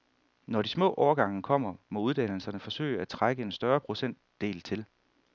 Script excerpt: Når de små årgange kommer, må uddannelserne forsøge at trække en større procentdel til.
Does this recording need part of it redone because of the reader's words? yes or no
no